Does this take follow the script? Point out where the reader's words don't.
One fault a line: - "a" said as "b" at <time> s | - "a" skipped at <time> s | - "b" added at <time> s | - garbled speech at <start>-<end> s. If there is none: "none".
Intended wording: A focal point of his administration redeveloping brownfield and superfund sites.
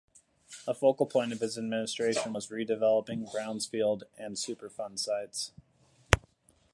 - "was" added at 2.3 s